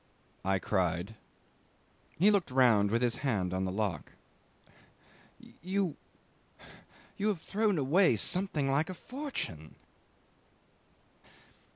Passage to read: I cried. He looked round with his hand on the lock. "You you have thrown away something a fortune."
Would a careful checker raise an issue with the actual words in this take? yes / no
yes